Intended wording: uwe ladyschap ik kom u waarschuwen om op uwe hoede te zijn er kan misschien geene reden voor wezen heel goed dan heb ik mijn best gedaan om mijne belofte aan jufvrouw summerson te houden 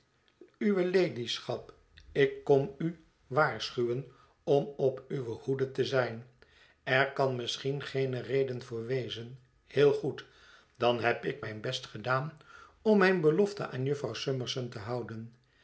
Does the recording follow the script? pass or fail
pass